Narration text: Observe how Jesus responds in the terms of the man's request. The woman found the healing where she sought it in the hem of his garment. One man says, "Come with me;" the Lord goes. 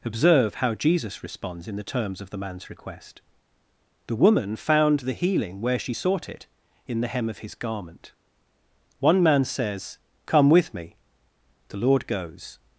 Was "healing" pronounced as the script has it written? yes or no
yes